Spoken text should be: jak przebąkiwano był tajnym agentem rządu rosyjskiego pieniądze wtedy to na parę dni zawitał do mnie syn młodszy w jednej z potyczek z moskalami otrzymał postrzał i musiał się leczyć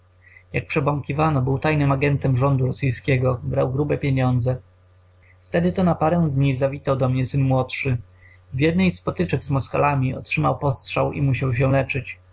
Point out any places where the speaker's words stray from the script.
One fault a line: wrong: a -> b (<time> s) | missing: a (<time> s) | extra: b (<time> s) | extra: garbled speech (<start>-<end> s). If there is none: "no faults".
extra: brał grube (3.4 s)